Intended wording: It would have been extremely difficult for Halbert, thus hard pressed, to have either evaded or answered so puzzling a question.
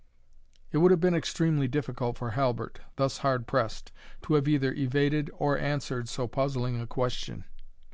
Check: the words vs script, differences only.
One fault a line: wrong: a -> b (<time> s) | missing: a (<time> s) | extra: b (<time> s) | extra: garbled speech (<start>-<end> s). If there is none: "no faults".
no faults